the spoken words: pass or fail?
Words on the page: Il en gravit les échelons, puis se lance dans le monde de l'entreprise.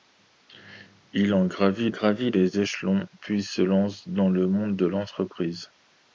fail